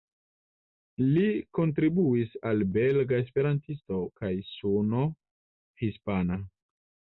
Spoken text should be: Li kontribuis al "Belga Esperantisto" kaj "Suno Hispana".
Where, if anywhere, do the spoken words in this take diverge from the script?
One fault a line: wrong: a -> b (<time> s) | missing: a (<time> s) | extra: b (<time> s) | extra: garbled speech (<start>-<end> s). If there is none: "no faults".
no faults